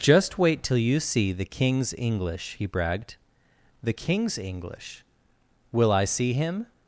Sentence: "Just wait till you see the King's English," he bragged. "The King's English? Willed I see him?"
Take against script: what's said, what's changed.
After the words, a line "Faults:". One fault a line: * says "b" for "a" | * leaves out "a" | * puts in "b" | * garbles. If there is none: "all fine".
"Just wait till you see the King's English," he bragged. "The King's English? Will I see him?"
Faults:
* says "Will" for "Willed"